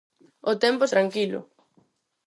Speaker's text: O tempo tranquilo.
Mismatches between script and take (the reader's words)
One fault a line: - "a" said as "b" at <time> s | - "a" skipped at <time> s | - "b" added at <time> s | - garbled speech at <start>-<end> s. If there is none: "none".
none